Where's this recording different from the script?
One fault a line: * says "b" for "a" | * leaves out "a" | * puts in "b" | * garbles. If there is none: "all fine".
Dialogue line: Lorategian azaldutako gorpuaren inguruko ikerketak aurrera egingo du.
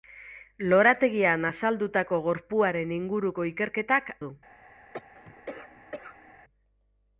* leaves out "aurrera egingo"